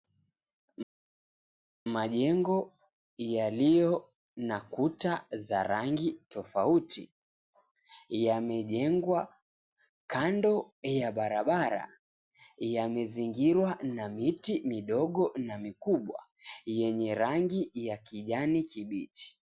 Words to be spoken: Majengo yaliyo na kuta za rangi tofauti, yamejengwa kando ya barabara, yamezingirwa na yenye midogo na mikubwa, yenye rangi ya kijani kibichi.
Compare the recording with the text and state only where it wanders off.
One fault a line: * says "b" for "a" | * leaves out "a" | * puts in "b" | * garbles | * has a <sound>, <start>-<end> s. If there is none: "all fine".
* says "miti" for "yenye"